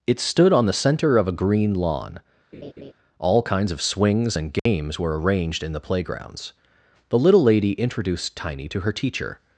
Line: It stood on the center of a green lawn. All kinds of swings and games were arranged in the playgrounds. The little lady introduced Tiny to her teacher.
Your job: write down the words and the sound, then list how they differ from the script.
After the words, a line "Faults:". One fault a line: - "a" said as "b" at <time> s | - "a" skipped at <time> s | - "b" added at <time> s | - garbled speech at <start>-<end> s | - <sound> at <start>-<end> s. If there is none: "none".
It stood on the center of a green lawn. All kinds of swings and games were arranged in the playgrounds. The little lady introduced Tiny to her teacher.
Faults:
- laugh at 2.5-2.9 s
- dropout at 4.6-4.7 s